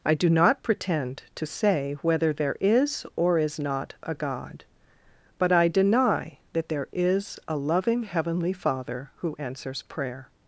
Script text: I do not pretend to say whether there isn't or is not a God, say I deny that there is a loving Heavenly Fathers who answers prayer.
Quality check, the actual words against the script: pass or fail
fail